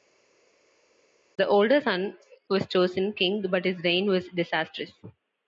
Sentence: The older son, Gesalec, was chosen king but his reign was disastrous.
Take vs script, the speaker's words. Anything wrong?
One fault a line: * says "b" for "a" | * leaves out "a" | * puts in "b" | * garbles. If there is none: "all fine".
* leaves out "Gesalec"